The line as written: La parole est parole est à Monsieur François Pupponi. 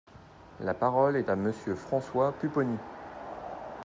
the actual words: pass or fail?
fail